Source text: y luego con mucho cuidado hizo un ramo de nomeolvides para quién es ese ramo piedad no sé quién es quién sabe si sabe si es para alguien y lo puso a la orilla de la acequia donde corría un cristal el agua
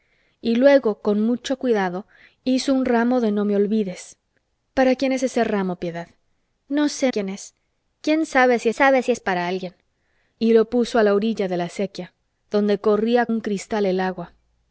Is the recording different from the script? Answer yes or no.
no